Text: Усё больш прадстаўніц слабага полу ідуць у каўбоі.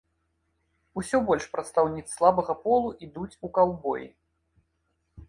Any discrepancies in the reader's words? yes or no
no